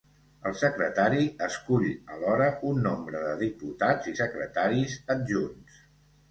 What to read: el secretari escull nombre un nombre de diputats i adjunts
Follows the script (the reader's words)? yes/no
no